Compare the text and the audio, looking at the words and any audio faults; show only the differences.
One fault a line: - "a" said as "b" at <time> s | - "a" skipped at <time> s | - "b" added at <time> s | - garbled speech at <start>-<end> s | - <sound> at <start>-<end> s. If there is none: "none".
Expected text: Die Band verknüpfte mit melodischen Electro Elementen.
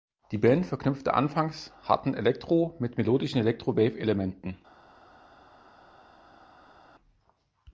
- "anfangs harten Elektro" added at 1.1 s
- "Wave" added at 3.8 s